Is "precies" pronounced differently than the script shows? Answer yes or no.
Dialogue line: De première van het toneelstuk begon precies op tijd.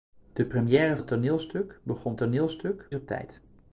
yes